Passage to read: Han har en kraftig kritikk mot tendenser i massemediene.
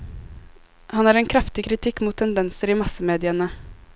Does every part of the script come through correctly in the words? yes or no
yes